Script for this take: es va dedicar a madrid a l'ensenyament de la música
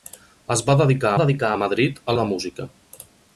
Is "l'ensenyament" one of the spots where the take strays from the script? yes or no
yes